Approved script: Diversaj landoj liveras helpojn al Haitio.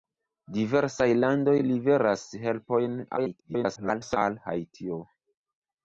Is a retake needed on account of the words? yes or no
yes